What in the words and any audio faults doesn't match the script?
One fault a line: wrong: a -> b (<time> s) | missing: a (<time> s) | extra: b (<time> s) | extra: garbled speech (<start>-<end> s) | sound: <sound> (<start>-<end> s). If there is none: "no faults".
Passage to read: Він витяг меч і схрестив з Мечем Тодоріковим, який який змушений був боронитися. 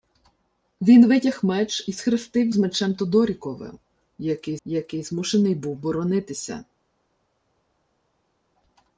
no faults